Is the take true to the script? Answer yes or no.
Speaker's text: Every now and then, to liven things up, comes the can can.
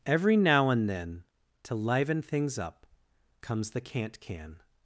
no